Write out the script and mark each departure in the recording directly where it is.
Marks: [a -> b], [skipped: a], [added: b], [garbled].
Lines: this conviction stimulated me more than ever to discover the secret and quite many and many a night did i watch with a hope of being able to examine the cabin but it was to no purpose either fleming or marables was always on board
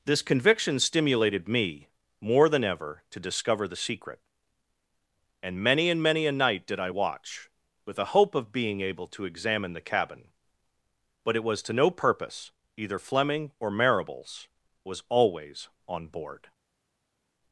this conviction stimulated me more than ever to discover the secret and [skipped: quite] many and many a night did i watch with a hope of being able to examine the cabin but it was to no purpose either fleming or marables was always on board